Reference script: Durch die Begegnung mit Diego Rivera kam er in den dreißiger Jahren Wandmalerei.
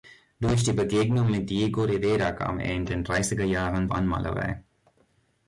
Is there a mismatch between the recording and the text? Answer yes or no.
no